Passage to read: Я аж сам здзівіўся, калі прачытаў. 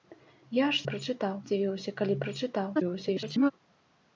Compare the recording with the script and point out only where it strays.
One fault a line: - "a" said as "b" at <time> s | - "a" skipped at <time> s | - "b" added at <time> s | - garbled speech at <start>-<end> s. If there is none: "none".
- "сам" said as "прачытаў" at 0.9 s
- garbled speech at 2.7-3.5 s